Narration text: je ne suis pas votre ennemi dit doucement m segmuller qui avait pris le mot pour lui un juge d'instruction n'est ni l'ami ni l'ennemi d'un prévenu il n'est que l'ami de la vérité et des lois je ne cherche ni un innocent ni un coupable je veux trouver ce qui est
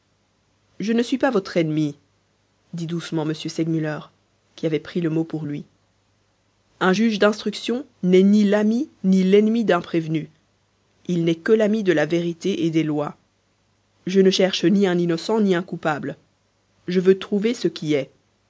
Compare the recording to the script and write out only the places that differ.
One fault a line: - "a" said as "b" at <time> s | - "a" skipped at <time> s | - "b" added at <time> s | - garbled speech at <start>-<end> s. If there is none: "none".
none